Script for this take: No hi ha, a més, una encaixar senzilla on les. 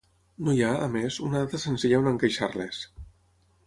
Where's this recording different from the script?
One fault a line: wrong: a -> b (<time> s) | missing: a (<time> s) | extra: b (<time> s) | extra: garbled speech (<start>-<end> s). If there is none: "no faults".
wrong: encaixar -> data (1.4 s)
extra: encaixar (2.1 s)